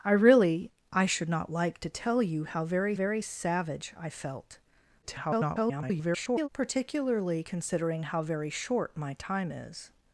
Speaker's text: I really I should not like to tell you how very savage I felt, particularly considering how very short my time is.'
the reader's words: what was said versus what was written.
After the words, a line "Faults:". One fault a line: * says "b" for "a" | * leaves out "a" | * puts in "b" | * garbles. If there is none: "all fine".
I really I should not like to tell you how very very savage I felt, [garbled] particularly considering how very short my time is.'
Faults:
* puts in "very"
* garbles